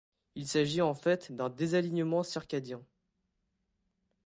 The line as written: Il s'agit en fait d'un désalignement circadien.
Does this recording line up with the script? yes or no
yes